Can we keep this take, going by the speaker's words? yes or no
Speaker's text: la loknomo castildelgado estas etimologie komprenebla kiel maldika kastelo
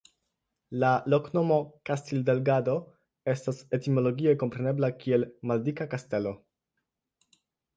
yes